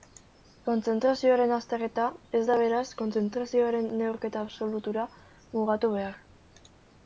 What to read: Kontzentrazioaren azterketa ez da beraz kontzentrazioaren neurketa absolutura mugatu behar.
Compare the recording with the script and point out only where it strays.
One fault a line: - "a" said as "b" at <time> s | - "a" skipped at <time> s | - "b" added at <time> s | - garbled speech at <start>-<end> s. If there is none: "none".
none